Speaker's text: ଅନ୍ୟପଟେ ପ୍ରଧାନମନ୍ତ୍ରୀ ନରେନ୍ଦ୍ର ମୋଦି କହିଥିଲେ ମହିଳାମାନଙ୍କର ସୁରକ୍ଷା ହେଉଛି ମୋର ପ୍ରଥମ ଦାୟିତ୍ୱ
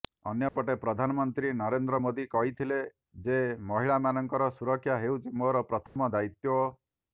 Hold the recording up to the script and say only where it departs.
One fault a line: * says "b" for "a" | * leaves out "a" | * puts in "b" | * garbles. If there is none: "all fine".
* puts in "ଯେ"